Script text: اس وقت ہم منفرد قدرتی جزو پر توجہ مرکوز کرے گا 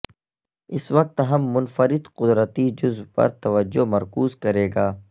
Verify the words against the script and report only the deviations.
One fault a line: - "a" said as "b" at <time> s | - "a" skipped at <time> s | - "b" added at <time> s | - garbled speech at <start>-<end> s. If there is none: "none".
none